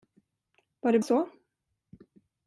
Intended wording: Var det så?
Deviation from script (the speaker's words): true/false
false